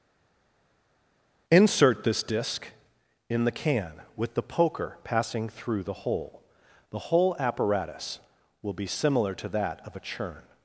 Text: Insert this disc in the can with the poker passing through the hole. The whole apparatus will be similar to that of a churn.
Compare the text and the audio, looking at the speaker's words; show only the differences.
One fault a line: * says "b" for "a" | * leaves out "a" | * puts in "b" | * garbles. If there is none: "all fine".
all fine